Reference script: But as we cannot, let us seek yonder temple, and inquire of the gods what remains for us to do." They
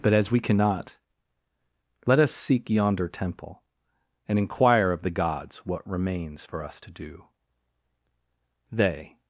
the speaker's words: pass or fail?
pass